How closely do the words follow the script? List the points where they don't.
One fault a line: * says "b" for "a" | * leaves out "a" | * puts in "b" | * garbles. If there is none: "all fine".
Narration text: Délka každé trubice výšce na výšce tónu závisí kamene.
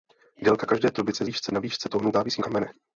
all fine